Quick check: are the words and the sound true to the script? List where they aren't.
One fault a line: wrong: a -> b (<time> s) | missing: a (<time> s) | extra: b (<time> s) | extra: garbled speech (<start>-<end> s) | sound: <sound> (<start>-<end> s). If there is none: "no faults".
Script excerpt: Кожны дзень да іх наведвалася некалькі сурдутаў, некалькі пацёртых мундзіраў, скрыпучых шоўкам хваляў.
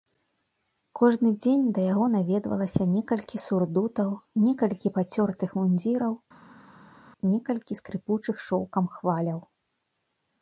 wrong: іх -> яго (1.9 s)
extra: некалькі (7.3 s)